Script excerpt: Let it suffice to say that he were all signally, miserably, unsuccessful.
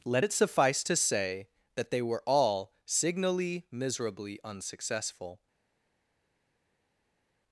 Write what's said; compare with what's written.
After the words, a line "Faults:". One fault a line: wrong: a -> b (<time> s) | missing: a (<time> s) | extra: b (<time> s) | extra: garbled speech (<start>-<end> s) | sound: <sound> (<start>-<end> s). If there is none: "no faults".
Let it suffice to say that they were all signally, miserably, unsuccessful.
Faults:
wrong: he -> they (1.9 s)